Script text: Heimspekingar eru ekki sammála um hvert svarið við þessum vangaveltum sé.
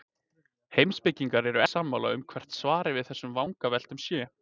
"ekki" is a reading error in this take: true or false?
true